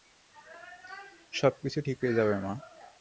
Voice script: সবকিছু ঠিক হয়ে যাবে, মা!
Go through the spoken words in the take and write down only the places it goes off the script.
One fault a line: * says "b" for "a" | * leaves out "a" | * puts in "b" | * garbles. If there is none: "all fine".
all fine